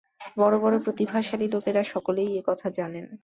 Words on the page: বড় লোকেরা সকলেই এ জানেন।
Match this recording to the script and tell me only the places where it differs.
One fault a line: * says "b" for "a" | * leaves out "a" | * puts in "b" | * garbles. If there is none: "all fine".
* puts in "বড় প্রতিভাশালী"
* puts in "কথা"